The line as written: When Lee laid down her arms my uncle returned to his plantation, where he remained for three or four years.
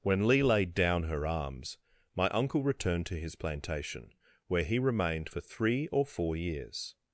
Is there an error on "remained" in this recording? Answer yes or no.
no